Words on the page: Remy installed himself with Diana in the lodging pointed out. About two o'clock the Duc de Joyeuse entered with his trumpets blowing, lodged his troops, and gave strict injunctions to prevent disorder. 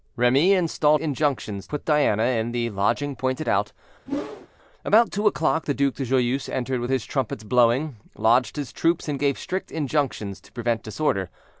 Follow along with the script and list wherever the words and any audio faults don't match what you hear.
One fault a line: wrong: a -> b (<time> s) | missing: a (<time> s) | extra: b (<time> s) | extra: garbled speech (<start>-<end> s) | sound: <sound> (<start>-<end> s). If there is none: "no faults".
wrong: himself -> injunctions (1.0 s)
sound: whoosh (4.1-4.5 s)